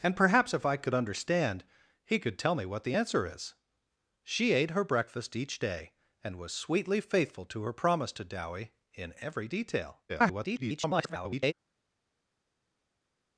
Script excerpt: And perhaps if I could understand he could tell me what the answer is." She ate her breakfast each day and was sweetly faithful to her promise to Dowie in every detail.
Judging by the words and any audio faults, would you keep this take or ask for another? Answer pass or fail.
fail